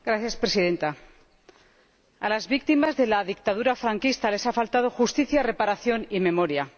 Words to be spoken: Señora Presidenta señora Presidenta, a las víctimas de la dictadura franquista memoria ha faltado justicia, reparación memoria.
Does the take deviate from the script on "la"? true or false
false